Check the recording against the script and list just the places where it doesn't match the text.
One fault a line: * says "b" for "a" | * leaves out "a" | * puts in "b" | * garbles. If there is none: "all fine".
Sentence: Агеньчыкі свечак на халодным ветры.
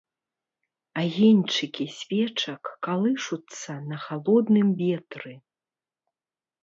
* puts in "калышуцца"